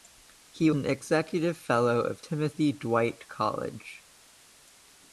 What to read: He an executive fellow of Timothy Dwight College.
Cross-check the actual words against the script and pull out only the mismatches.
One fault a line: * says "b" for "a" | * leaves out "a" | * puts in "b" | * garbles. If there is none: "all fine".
all fine